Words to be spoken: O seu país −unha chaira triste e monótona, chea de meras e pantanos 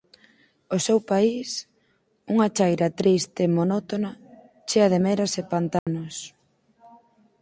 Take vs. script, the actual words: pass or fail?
pass